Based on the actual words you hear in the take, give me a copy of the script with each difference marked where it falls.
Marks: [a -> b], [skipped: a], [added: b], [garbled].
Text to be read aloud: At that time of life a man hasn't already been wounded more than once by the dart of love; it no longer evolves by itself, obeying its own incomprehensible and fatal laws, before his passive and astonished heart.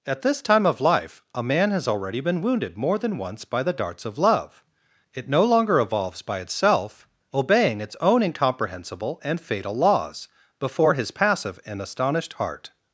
At [that -> this] time of life a man [hasn't -> has] already been wounded more than once by the [dart -> darts] of love; it no longer evolves by itself, obeying its own incomprehensible and fatal laws, before his passive and astonished heart.